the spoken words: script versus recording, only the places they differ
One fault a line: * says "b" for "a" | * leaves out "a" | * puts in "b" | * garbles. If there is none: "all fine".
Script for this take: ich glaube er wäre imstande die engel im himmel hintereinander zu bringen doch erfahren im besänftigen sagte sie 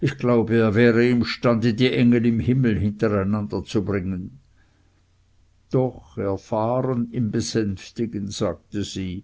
all fine